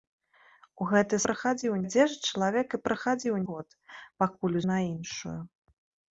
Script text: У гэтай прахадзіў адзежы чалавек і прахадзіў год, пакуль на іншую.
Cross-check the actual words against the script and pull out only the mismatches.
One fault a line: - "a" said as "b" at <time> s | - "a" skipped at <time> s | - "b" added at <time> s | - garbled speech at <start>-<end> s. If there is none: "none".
none